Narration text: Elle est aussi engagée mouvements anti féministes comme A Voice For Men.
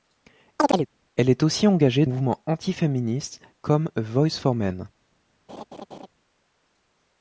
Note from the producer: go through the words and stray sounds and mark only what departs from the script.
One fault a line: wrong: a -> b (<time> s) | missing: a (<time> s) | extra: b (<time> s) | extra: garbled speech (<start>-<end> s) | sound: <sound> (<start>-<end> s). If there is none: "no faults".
sound: chirp (0.6-0.9 s)
sound: laugh (5.5-6.1 s)